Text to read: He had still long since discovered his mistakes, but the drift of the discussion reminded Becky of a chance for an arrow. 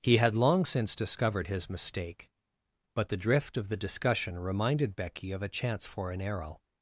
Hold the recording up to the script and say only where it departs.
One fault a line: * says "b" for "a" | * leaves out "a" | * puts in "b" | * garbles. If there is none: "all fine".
* leaves out "still"
* says "mistake" for "mistakes"